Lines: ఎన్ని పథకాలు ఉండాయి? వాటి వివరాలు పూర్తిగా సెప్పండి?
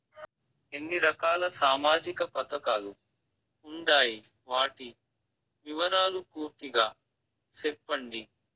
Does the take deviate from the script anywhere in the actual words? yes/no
yes